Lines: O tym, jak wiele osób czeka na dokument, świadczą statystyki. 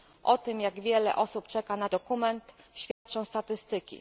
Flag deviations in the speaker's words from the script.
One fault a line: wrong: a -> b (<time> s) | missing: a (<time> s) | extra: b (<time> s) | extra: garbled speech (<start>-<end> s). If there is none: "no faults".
no faults